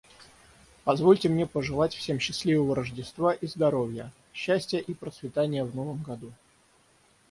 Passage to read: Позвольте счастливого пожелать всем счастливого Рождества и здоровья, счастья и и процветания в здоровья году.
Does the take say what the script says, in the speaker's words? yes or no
no